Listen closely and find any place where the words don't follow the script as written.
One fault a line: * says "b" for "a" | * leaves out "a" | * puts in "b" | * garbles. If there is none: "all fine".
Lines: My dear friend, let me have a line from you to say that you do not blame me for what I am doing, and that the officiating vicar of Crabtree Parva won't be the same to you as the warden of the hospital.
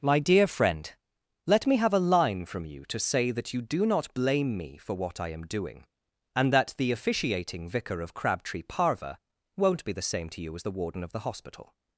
all fine